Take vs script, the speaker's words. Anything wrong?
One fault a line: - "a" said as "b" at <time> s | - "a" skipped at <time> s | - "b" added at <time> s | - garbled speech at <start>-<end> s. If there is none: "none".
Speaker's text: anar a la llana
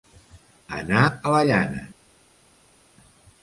none